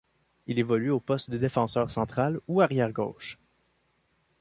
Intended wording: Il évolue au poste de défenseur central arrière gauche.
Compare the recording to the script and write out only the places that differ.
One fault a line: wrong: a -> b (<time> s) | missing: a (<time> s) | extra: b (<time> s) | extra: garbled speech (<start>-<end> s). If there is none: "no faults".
extra: ou (2.5 s)